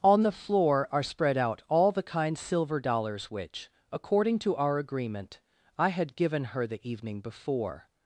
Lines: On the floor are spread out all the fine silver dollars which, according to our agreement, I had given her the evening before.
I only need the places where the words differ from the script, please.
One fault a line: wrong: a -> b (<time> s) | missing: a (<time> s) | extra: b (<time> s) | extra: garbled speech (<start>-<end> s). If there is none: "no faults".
wrong: fine -> kind (2.0 s)